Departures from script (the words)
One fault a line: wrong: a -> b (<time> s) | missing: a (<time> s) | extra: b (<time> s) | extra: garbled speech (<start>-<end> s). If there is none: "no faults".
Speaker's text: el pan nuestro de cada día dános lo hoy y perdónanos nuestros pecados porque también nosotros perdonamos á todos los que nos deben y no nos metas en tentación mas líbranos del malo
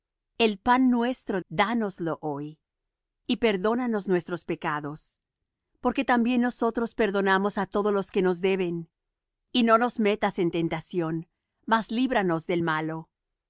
missing: de cada día (1.4 s)